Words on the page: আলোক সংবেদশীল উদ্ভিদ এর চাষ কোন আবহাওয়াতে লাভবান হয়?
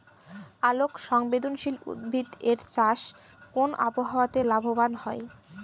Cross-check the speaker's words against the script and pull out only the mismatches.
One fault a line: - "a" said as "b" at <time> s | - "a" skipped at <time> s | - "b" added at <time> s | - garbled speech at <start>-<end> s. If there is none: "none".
none